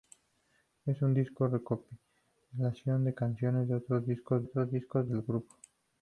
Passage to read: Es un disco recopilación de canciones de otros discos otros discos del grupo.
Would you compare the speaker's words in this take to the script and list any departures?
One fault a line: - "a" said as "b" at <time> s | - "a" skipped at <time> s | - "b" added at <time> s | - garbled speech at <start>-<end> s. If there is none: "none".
none